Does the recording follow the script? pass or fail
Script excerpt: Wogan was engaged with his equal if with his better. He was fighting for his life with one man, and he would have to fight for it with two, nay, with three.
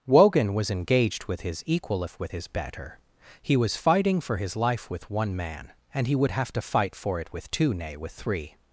pass